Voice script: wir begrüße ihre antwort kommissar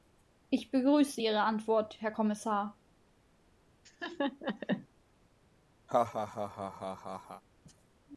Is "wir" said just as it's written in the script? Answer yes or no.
no